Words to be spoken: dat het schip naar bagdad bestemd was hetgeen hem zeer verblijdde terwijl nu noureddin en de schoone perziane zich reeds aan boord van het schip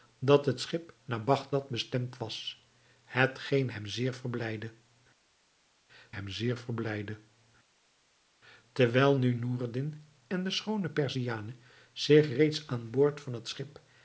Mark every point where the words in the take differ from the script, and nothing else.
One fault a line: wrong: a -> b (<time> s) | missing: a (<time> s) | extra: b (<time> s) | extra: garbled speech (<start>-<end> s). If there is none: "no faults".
extra: hem zeer verblijdde (6.1 s)